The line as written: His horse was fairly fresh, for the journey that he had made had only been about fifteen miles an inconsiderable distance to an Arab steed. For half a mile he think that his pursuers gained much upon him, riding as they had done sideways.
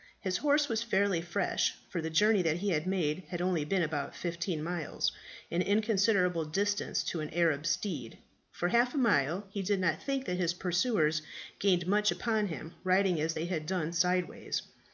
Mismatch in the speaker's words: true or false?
true